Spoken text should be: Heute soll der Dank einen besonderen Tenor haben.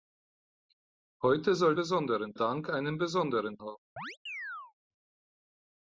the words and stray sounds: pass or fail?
fail